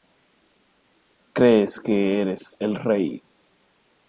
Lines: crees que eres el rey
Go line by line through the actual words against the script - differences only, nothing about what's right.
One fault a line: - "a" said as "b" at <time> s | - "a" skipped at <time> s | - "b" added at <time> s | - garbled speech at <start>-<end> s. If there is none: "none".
none